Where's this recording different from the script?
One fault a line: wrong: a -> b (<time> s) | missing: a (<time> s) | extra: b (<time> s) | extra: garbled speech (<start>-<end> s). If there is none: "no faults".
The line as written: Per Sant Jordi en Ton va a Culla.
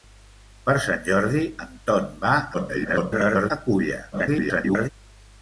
extra: garbled speech (2.5-3.5 s)
extra: garbled speech (4.1-4.9 s)